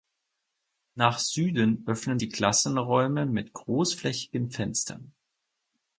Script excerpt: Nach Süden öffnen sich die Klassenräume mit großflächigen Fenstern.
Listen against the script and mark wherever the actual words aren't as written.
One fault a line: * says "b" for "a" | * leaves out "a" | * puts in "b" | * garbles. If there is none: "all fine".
* leaves out "sich"